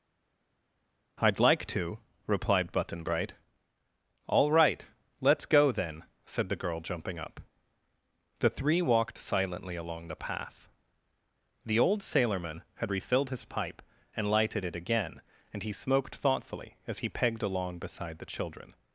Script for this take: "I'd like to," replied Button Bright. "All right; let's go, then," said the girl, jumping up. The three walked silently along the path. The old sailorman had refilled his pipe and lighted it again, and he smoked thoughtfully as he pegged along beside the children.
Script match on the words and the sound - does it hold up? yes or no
yes